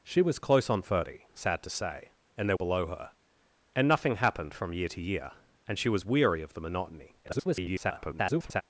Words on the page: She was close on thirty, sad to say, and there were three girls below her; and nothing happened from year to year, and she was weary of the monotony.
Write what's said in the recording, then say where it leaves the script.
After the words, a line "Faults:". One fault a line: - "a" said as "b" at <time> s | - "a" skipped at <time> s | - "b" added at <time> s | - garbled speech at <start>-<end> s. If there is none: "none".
She was close on thirty, sad to say, and there below her; and nothing happened from year to year, and she was weary of the monotony. [garbled]
Faults:
- "were three girls" skipped at 2.6 s
- garbled speech at 7.2-8.6 s